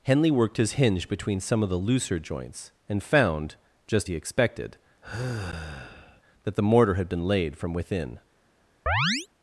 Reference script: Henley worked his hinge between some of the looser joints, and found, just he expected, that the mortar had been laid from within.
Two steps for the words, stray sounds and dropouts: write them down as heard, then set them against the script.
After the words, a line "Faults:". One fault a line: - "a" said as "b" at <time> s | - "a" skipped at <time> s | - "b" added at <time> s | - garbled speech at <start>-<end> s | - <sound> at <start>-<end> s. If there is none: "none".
Henley worked his hinge between some of the looser joints, and found, just he expected, that the mortar had been laid from within.
Faults:
- sigh at 5.0-6.2 s
- chirp at 8.9-9.3 s